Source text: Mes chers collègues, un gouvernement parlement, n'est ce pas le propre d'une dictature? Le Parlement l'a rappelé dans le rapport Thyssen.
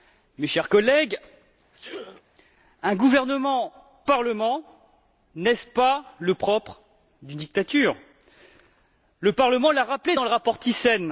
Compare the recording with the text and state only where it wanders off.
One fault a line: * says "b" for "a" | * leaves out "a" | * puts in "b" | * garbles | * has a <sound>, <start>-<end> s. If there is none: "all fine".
* has a sneeze, 1.7-2.2 s